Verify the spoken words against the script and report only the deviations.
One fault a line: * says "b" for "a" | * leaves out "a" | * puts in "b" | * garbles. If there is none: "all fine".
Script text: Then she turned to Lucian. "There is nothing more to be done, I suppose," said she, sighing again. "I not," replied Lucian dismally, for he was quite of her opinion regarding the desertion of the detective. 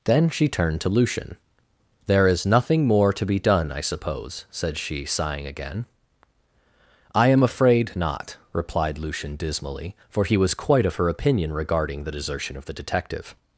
* puts in "am afraid"